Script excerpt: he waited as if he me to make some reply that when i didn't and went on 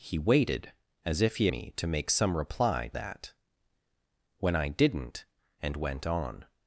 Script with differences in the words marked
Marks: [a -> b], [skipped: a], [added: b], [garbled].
he waited as if he me to make some reply that when i didn't and went on